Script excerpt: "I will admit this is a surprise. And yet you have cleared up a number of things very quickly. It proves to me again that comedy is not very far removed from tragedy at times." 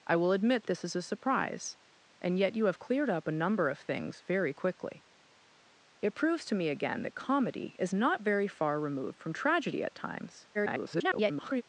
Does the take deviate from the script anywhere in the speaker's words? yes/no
yes